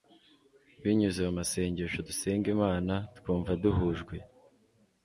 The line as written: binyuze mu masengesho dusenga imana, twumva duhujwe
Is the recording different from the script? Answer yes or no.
no